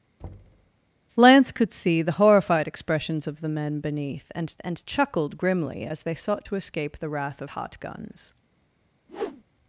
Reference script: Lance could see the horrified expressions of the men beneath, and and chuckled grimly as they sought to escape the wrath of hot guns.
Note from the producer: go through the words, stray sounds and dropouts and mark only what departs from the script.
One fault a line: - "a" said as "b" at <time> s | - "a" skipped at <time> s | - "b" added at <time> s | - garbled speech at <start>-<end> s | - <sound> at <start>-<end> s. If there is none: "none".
- thud at 0.2-0.7 s
- whoosh at 9.1-9.4 s